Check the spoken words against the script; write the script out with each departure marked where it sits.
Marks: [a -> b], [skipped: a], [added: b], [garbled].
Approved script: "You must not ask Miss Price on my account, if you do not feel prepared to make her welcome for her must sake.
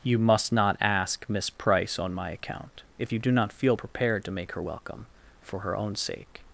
"You must not ask Miss Price on my account, if you do not feel prepared to make her welcome for her [must -> own] sake.